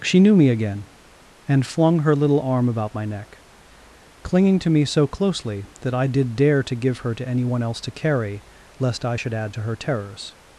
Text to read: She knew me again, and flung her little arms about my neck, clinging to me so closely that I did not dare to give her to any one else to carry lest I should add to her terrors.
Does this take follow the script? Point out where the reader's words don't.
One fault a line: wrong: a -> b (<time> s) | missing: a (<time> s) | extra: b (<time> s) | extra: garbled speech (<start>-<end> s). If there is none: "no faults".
wrong: arms -> arm (2.4 s)
missing: not (6.4 s)